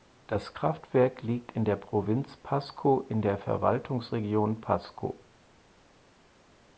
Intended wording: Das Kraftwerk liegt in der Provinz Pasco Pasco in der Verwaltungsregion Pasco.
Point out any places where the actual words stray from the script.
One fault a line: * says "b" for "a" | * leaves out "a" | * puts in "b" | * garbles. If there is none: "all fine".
* leaves out "Pasco"